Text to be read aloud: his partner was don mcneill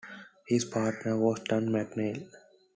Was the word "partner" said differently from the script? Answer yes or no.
no